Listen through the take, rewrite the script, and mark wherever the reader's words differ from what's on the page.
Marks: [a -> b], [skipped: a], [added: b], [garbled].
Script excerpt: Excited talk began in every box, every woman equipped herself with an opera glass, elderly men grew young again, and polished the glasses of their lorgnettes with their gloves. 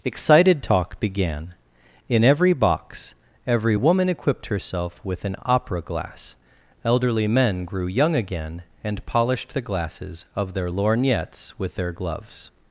Excited talk began in every box, every woman equipped herself with an opera glass, elderly men grew young again, and polished the glasses of their lorgnettes with their gloves.